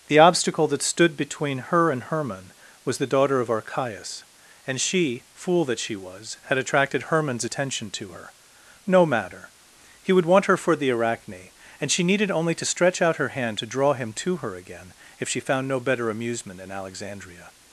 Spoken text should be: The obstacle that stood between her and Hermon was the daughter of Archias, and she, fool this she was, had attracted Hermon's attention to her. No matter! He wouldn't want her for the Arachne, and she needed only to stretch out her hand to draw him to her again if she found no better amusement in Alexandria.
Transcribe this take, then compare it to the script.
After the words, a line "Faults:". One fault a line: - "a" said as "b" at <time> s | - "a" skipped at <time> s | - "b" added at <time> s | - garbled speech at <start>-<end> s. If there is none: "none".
The obstacle that stood between her and Hermon was the daughter of Archias, and she, fool that she was, had attracted Hermon's attention to her. No matter! He would want her for the Arachne, and she needed only to stretch out her hand to draw him to her again if she found no better amusement in Alexandria.
Faults:
- "this" said as "that" at 5.7 s
- "wouldn't" said as "would" at 10.1 s